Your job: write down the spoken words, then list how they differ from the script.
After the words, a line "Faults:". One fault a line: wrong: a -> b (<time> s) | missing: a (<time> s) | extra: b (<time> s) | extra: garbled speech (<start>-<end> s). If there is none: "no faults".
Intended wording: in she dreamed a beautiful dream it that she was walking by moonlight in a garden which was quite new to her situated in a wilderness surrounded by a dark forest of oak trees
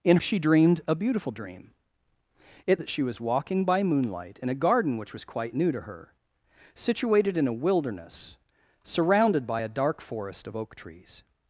in she dreamed a beautiful dream it that she was walking by moonlight in a garden which was quite new to her situated in a wilderness surrounded by a dark forest of oak trees
Faults:
no faults